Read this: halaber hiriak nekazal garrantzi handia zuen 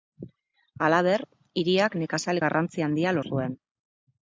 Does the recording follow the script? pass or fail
pass